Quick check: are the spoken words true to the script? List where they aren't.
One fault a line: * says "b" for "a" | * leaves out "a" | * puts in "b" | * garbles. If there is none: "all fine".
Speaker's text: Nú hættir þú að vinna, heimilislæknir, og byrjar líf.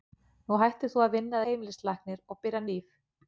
all fine